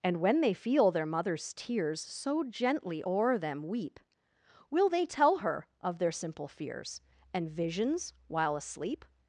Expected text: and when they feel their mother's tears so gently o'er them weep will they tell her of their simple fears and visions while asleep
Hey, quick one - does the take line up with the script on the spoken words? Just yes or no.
yes